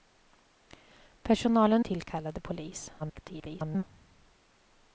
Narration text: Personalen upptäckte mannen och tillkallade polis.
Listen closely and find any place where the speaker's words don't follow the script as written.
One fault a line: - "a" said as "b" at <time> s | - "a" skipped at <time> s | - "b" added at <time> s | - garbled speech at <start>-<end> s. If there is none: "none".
- "upptäckte mannen och" skipped at 1.9 s
- garbled speech at 3.0-3.8 s